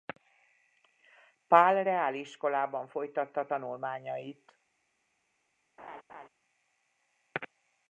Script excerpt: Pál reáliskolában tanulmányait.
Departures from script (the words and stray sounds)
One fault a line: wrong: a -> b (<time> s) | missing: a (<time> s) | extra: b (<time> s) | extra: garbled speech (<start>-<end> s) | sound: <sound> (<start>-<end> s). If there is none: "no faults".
extra: folytatta (2.9 s)
sound: laugh (5.8-6.3 s)